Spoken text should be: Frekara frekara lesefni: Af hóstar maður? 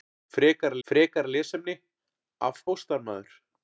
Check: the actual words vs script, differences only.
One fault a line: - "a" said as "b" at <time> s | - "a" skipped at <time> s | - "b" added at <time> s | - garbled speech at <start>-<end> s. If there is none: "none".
none